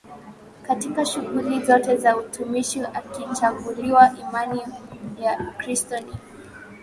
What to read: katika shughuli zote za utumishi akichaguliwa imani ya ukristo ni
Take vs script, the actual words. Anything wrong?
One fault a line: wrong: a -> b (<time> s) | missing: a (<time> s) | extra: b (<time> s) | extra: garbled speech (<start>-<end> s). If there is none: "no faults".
no faults